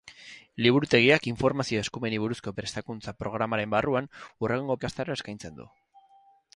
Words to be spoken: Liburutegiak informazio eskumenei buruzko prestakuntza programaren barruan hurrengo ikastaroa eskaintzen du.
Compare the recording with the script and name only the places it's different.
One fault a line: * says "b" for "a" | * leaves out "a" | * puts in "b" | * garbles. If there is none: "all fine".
all fine